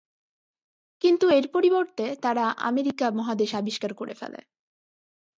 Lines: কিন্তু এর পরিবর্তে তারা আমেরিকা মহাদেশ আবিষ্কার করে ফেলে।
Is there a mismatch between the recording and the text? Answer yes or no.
no